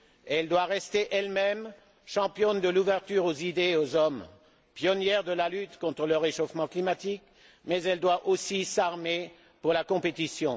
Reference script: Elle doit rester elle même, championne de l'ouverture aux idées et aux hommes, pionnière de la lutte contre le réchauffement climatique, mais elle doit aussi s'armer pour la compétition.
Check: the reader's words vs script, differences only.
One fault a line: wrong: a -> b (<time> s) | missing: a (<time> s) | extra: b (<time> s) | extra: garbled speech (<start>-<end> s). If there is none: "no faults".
no faults